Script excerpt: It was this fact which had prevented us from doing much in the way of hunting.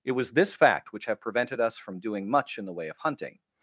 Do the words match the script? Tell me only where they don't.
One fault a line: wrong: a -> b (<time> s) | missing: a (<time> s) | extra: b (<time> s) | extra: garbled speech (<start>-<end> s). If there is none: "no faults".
wrong: had -> have (1.0 s)